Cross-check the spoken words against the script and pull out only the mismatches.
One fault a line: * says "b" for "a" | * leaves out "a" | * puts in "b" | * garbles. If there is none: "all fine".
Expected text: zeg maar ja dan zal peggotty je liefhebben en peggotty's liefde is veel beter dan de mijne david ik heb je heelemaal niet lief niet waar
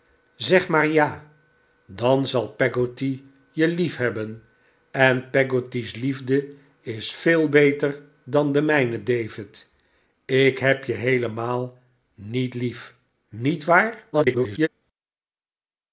* garbles